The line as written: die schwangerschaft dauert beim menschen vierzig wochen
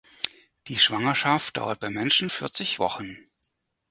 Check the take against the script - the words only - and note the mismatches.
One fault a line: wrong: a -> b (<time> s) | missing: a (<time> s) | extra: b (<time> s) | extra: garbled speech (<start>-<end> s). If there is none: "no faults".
no faults